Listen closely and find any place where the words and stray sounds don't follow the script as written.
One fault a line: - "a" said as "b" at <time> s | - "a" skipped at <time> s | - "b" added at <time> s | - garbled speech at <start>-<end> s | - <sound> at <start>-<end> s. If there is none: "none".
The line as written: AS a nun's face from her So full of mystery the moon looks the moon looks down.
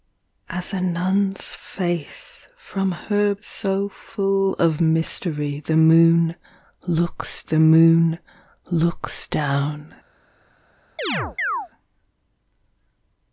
- chirp at 11.0-11.7 s